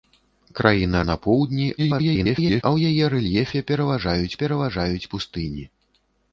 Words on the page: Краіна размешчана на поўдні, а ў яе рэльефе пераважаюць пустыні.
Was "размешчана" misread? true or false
true